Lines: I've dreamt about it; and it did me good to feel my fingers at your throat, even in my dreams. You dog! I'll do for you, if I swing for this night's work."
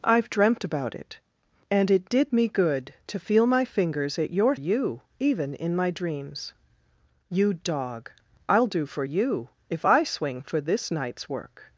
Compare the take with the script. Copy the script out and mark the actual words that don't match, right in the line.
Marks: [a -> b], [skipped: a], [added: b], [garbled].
I've dreamt about it; and it did me good to feel my fingers at your [throat, -> you] even in my dreams. You dog! I'll do for you, if I swing for this night's work."